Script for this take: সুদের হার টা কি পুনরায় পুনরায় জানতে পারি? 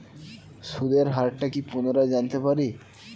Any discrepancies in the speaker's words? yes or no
yes